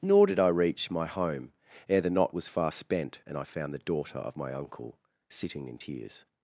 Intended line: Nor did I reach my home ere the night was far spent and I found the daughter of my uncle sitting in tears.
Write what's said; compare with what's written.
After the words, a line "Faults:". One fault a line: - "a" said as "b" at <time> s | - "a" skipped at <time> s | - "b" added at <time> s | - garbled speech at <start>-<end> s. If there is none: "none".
Nor did I reach my home ere the knot was far spent and I found the daughter of my uncle sitting in tears.
Faults:
- "night" said as "knot" at 2.1 s